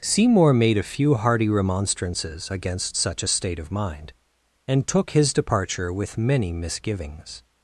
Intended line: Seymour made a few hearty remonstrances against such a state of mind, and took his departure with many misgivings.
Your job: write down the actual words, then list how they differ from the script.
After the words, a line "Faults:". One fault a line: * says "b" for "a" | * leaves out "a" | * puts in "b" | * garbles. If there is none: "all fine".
Seymour made a few hearty remonstrances against such a state of mind, and took his departure with many misgivings.
Faults:
all fine